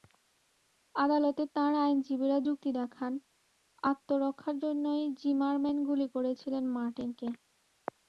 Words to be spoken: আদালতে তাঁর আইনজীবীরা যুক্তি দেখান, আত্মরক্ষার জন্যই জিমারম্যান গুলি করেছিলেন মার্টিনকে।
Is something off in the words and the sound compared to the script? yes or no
no